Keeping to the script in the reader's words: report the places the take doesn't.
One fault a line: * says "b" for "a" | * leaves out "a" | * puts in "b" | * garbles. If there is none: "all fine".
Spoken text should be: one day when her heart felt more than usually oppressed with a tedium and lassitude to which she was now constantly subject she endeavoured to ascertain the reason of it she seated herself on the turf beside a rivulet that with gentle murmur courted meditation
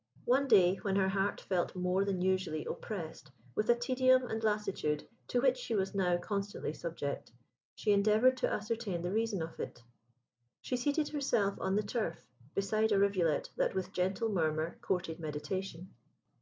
all fine